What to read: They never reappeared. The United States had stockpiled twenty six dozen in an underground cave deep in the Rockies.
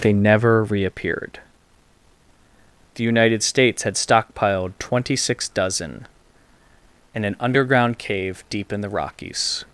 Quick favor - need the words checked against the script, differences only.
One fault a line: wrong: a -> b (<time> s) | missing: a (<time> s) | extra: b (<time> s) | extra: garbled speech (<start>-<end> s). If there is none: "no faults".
no faults